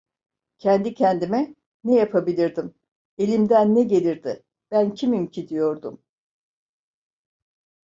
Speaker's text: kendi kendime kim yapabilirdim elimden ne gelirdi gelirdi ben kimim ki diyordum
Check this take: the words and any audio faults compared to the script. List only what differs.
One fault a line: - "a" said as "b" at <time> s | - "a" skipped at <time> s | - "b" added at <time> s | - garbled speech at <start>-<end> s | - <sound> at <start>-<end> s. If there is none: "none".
- "kim" said as "ne" at 1.8 s
- "gelirdi" skipped at 4.4 s